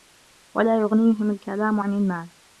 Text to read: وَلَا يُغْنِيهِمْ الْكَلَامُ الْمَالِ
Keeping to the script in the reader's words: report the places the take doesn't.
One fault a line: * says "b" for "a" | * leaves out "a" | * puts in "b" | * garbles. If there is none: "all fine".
* puts in "عَنْ"